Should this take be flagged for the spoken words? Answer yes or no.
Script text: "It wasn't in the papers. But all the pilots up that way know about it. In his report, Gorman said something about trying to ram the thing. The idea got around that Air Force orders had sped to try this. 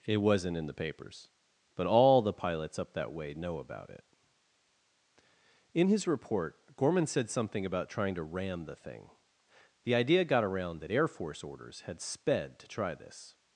no